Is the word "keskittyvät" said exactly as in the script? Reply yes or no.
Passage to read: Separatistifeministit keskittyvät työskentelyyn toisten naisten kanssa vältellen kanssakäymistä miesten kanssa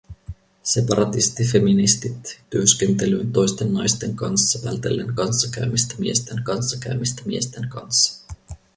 no